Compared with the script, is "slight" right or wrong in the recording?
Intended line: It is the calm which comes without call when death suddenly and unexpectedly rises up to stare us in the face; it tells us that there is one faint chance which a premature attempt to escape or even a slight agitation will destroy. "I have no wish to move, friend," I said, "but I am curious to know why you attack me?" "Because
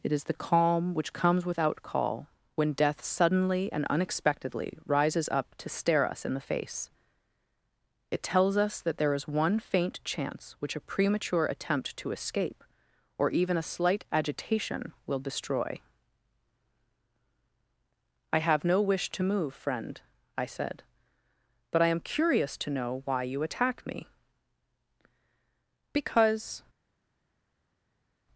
right